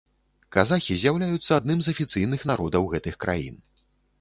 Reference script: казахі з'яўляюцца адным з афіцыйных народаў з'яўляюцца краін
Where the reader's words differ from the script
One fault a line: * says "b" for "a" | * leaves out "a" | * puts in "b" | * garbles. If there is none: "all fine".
* says "гэтых" for "з'яўляюцца"